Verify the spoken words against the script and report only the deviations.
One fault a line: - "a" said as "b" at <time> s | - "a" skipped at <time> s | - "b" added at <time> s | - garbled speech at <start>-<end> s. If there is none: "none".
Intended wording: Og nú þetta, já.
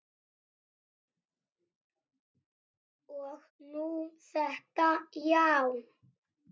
none